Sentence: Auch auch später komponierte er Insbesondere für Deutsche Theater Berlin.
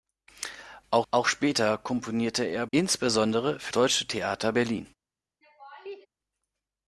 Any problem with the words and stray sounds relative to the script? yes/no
yes